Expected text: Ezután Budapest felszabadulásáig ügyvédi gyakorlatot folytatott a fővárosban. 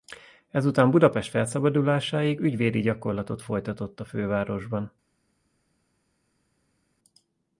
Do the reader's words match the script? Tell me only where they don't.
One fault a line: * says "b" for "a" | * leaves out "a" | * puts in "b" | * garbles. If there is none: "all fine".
all fine